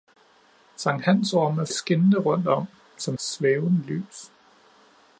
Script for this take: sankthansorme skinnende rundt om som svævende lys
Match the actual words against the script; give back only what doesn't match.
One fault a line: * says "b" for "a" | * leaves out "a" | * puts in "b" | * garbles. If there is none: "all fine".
all fine